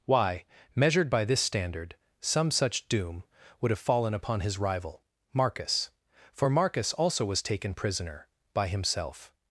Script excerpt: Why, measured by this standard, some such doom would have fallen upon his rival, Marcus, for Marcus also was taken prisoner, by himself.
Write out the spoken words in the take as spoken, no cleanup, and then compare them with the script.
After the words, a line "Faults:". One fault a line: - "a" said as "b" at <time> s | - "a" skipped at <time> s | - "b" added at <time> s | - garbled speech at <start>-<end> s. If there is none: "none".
Why, measured by this standard, some such doom would have fallen upon his rival, Marcus, for Marcus also was taken prisoner, by himself.
Faults:
none